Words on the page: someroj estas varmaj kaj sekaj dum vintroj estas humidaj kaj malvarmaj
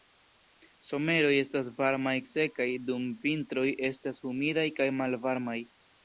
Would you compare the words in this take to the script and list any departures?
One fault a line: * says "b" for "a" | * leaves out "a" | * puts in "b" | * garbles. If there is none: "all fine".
* leaves out "kaj"